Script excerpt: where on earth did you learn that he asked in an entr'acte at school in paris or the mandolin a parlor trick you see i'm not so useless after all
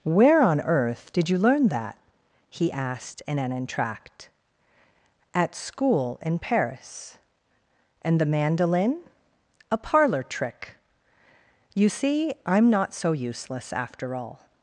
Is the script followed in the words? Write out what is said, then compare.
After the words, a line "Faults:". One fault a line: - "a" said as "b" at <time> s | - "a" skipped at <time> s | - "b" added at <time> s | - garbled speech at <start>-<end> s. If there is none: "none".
where on earth did you learn that he asked in an entr'acte at school in paris and the mandolin a parlor trick you see i'm not so useless after all
Faults:
- "or" said as "and" at 8.0 s